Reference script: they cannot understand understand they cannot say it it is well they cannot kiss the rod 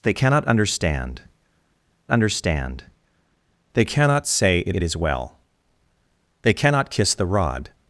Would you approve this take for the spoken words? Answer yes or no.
yes